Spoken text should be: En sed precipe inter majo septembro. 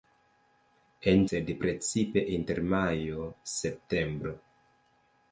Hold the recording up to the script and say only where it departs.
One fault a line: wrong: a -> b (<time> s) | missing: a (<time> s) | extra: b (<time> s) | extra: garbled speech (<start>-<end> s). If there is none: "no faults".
no faults